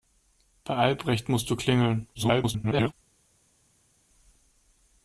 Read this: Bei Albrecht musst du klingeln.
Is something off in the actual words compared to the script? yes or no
yes